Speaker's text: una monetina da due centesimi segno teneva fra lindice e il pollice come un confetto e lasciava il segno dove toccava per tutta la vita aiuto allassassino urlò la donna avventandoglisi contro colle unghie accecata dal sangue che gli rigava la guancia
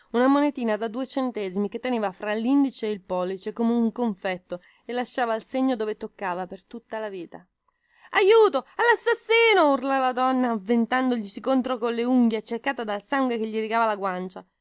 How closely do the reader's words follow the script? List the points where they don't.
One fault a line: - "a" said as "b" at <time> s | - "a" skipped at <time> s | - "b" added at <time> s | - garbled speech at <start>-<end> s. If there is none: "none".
- "segno" said as "che" at 1.7 s